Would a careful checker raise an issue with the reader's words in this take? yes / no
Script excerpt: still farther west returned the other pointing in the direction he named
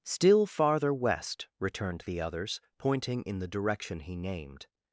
yes